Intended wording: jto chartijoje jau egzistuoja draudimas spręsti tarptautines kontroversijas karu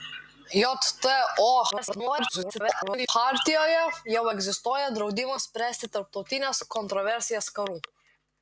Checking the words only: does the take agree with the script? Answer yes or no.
no